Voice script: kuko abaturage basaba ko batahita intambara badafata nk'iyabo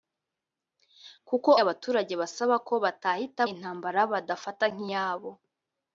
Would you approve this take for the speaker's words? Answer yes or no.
yes